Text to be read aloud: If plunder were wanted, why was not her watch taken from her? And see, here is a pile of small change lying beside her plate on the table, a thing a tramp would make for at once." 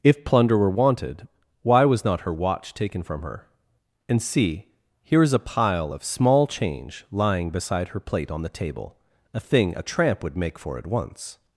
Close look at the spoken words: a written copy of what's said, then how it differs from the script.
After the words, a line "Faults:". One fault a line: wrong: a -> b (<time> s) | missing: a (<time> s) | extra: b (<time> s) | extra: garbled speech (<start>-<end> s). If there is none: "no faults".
If plunder were wanted, why was not her watch taken from her? And see, here is a pile of small change lying beside her plate on the table, a thing a tramp would make for at once."
Faults:
no faults